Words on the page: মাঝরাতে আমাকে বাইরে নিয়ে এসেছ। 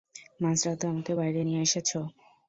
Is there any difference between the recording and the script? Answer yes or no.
no